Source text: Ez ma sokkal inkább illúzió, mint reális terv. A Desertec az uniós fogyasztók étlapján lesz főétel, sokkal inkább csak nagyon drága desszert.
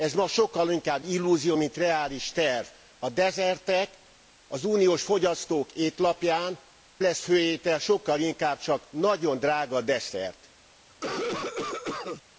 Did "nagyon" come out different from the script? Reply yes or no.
no